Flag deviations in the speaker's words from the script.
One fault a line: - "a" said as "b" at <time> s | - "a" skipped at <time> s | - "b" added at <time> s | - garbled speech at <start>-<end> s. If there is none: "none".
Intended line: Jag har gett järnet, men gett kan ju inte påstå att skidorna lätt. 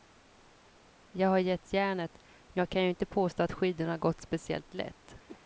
- "gett" said as "jag" at 2.6 s
- "gått speciellt" added at 4.0 s